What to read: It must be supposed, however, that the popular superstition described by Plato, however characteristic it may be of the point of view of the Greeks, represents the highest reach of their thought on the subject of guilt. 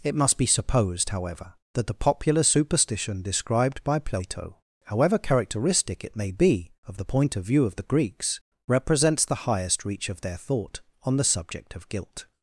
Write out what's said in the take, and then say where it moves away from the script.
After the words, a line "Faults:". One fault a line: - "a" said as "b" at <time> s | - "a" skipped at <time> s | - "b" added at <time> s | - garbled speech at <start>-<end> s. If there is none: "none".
It must be supposed, however, that the popular superstition described by Plato, however characteristic it may be of the point of view of the Greeks, represents the highest reach of their thought on the subject of guilt.
Faults:
none